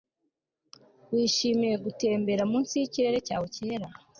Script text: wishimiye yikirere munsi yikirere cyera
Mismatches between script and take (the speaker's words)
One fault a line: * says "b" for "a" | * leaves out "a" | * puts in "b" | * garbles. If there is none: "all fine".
* says "gutembera" for "yikirere"
* puts in "cyawe"